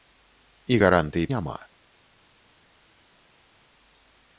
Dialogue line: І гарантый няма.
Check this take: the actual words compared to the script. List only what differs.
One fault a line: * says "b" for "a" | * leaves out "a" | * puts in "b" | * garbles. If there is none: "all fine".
all fine